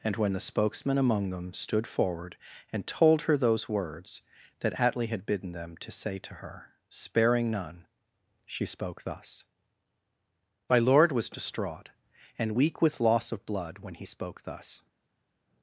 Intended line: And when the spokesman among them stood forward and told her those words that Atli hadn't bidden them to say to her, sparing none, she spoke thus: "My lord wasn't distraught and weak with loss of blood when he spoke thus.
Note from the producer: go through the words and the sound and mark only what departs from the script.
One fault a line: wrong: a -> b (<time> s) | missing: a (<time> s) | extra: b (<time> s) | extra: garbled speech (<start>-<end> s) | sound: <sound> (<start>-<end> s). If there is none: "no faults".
wrong: hadn't -> had (5.1 s)
wrong: wasn't -> was (11.1 s)